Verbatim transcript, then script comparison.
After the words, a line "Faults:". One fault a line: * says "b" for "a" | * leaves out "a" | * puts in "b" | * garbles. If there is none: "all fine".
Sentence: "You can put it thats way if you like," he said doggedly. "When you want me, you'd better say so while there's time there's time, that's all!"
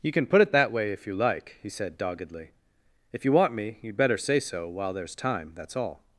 "You can put it that way if you like," he said doggedly. "If you want me, you'd better say so while there's time, that's all!"
Faults:
* says "that" for "thats"
* says "If" for "When"
* leaves out "there's time"